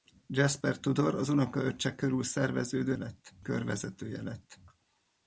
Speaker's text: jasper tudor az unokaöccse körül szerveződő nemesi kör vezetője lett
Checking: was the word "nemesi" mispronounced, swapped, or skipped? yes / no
yes